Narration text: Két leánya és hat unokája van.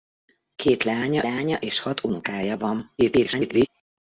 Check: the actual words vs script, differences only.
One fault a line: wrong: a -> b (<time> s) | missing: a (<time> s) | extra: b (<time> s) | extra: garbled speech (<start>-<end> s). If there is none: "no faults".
extra: leánya (1.2 s)
extra: garbled speech (3.0-3.7 s)